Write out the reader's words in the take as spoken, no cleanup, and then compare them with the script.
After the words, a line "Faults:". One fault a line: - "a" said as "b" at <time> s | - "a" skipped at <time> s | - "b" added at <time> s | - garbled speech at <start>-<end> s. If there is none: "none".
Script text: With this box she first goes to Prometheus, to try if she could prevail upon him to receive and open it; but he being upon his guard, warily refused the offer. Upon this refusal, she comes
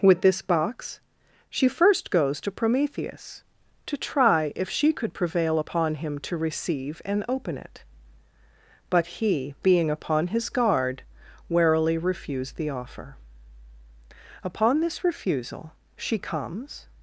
With this box she first goes to Prometheus, to try if she could prevail upon him to receive and open it; but he being upon his guard, warily refused the offer. Upon this refusal, she comes
Faults:
none